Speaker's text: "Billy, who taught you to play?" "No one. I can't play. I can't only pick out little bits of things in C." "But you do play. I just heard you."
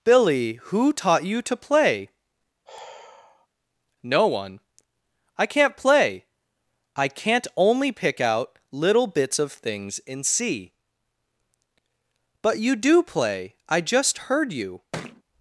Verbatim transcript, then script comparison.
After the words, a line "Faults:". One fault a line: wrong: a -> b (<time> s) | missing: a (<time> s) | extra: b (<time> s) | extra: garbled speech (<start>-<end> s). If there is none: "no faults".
"Billy, who taught you to play?" "No one. I can't play. I can't only pick out little bits of things in C." "But you do play. I just heard you."
Faults:
no faults